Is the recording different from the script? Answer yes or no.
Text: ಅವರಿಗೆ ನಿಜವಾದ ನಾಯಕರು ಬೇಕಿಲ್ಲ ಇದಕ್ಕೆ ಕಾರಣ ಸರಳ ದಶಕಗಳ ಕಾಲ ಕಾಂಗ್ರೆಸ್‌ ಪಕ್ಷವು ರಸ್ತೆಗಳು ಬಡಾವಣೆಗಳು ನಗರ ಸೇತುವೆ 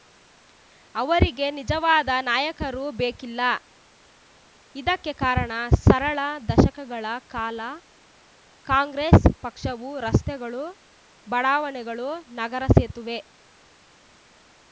no